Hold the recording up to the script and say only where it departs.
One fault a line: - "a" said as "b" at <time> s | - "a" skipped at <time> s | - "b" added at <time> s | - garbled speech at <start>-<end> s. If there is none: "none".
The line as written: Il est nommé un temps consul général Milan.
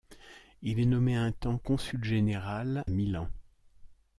none